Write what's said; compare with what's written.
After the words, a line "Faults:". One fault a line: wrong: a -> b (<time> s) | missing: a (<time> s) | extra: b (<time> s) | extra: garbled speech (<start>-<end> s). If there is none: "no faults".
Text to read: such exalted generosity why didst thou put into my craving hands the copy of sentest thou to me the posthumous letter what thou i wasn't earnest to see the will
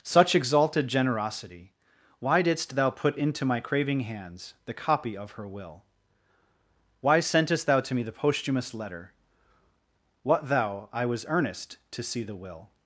such exalted generosity why didst thou put into my craving hands the copy of her will why sentest thou to me the posthumous letter what thou i was earnest to see the will
Faults:
extra: her will why (5.3 s)
wrong: wasn't -> was (11.1 s)